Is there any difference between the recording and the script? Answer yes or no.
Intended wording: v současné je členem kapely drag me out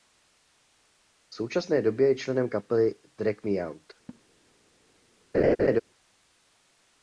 yes